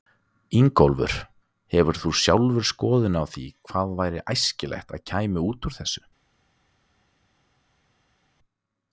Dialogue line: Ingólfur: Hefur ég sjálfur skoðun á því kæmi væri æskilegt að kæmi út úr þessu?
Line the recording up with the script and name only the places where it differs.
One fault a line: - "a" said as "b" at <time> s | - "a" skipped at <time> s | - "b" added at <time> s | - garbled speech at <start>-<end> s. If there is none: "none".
- "ég" said as "þú" at 2.0 s
- "kæmi" said as "hvað" at 3.7 s